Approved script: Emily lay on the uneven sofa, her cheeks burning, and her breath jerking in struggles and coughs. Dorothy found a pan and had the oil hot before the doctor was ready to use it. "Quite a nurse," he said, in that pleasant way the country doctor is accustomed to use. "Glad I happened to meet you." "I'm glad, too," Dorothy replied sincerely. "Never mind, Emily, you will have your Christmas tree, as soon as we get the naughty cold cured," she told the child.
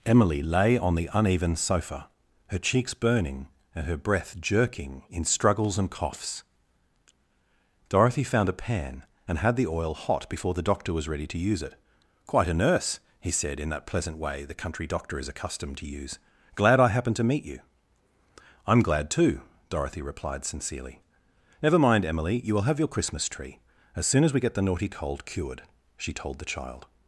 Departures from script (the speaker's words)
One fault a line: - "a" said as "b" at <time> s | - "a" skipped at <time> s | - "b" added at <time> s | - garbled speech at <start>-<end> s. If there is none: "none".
none